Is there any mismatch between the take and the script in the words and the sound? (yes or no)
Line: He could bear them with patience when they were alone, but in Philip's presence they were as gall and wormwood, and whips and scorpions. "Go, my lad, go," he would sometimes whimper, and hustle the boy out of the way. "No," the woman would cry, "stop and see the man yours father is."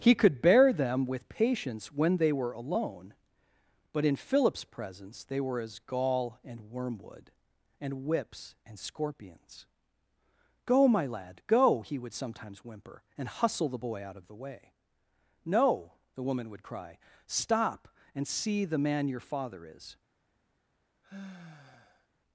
yes